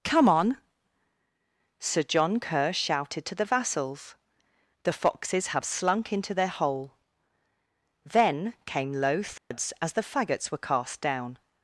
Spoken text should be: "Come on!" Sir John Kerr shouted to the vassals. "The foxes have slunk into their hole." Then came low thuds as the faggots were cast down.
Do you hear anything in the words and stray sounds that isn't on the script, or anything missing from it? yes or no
yes